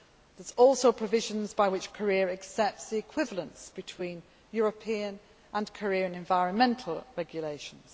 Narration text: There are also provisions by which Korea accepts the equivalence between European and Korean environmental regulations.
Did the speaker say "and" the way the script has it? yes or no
yes